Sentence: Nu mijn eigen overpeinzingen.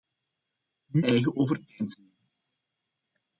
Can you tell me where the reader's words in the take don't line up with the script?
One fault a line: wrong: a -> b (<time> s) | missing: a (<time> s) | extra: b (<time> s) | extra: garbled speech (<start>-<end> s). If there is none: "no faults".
missing: mijn (1.1 s)